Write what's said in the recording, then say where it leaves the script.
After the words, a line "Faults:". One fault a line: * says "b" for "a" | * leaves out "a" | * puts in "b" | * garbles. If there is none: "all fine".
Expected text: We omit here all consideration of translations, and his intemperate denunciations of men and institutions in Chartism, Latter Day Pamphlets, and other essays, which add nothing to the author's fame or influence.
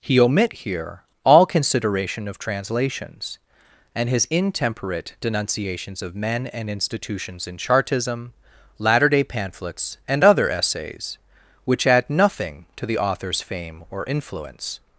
He omit here all consideration of translations, and his intemperate denunciations of men and institutions in Chartism, Latter Day Pamphlets, and other essays, which add nothing to the author's fame or influence.
Faults:
* says "He" for "We"